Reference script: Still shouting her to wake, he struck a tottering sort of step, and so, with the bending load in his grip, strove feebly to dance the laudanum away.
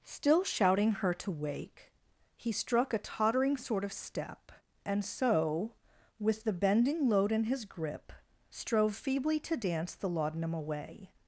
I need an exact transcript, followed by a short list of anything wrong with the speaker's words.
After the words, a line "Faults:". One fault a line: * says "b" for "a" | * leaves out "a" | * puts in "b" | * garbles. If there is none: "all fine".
Still shouting her to wake, he struck a tottering sort of step, and so, with the bending load in his grip, strove feebly to dance the laudanum away.
Faults:
all fine